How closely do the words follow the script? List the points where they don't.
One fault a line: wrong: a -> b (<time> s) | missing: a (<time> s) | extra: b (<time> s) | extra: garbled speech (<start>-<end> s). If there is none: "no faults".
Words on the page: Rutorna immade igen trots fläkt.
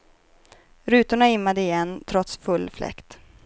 extra: full (2.4 s)